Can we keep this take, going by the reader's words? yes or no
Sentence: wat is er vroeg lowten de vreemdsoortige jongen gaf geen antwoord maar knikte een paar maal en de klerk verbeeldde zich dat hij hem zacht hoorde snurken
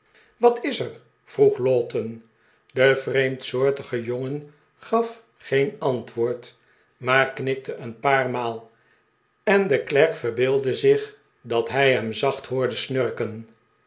yes